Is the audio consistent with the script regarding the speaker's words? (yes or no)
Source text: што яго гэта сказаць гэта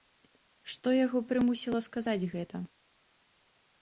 no